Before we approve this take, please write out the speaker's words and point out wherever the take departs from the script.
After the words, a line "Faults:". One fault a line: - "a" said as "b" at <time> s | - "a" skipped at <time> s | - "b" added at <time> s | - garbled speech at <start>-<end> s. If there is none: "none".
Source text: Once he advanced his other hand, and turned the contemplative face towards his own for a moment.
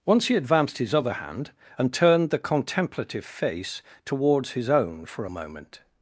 Once he advanced his other hand, and turned the contemplative face towards his own for a moment.
Faults:
none